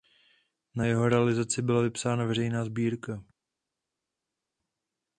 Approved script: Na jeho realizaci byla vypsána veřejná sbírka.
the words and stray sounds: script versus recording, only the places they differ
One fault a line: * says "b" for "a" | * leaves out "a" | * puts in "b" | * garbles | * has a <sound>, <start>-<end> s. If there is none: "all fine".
all fine